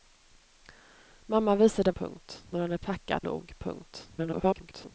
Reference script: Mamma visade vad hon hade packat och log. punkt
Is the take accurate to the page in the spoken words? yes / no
no